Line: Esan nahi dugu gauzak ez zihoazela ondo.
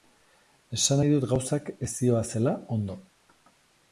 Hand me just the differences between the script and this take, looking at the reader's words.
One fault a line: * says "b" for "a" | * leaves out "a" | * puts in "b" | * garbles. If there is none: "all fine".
* says "dut" for "dugu"